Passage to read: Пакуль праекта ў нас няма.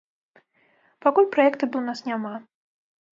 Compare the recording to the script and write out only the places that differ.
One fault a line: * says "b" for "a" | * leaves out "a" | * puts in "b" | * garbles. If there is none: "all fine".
all fine